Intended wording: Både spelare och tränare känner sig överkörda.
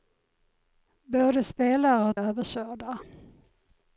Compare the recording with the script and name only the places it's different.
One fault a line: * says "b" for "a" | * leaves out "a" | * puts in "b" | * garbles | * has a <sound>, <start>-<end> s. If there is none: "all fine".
* leaves out "tränare känner sig"